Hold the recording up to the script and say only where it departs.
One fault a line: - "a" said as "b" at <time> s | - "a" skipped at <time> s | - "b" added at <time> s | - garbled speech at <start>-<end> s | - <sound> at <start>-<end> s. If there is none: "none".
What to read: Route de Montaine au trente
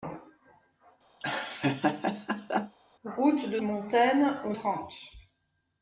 - laugh at 1.2-2.8 s